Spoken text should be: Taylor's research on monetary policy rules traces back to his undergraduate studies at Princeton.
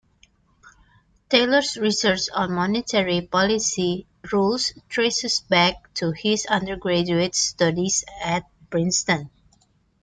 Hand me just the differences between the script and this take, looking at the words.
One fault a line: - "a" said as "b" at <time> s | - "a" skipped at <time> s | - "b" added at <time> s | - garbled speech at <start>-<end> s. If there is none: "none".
none